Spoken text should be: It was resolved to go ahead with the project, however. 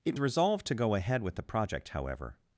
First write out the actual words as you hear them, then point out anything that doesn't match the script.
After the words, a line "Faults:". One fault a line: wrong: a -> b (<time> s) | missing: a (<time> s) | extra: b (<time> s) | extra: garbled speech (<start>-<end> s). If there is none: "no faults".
It resolved to go ahead with the project, however.
Faults:
missing: was (0.1 s)